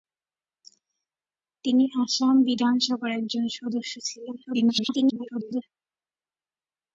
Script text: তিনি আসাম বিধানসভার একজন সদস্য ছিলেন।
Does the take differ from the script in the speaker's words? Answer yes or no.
yes